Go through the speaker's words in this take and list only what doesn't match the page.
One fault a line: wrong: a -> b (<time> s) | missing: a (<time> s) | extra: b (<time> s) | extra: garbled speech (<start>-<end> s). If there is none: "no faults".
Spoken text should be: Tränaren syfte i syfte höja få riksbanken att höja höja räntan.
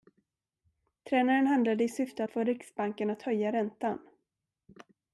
wrong: syfte -> handlade (1.5 s)
wrong: höja -> att (2.2 s)
missing: höja (3.5 s)